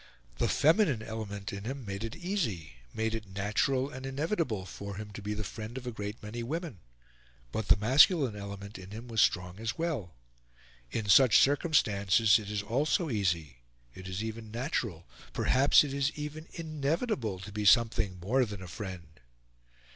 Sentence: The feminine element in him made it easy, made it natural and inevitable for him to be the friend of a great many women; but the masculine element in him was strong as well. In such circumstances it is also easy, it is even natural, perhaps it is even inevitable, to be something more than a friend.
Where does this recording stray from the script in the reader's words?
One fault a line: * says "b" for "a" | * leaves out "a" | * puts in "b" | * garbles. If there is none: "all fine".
all fine